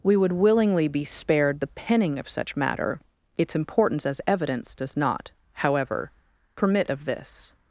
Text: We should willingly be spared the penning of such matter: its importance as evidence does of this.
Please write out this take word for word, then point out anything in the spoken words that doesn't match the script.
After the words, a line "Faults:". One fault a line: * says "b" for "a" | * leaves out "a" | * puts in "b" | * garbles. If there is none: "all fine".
We would willingly be spared the penning of such matter: its importance as evidence does not, however, permit of this.
Faults:
* says "would" for "should"
* puts in "not however permit"